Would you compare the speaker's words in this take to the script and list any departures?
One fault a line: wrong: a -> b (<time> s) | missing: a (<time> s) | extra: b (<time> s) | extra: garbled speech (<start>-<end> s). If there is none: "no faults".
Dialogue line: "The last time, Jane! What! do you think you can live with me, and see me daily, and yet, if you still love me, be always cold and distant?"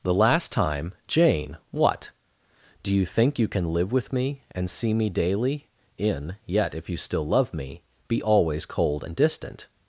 wrong: and -> in (6.0 s)